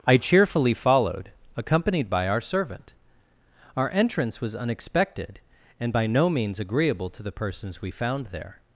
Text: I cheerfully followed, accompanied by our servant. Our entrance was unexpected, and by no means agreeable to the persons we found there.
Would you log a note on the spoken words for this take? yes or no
no